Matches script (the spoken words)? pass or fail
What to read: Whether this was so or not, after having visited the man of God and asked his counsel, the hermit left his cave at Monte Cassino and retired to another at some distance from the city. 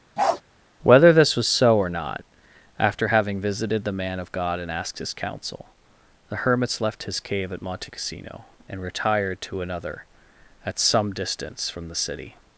fail